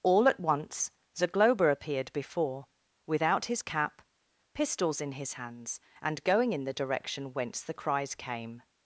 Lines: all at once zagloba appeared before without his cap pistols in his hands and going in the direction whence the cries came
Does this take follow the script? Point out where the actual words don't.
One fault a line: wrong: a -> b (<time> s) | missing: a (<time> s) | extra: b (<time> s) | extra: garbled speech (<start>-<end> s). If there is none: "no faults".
no faults